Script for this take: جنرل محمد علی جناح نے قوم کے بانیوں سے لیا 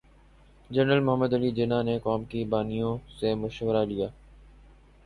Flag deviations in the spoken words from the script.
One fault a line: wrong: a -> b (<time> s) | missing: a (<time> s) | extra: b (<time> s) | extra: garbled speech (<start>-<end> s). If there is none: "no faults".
extra: مشورہ (3.4 s)